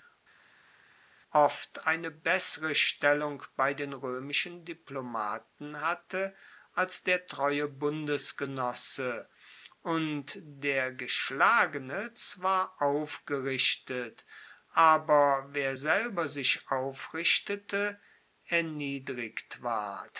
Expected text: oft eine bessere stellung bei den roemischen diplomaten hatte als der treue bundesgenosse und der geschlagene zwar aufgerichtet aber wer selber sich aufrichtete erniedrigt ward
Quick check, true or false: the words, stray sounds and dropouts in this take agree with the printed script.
true